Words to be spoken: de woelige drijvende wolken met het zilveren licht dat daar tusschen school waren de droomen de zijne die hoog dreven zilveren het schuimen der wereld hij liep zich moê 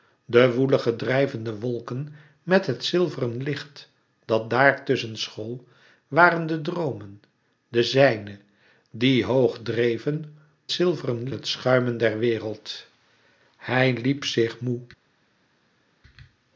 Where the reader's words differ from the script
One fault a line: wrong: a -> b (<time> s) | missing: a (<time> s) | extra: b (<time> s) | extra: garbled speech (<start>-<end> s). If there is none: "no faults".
no faults